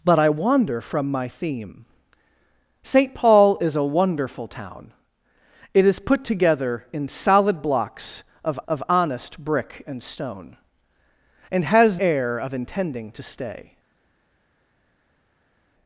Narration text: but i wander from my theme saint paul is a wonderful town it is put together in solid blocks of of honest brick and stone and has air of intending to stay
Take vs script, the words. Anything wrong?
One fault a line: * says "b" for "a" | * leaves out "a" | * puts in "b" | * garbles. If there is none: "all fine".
all fine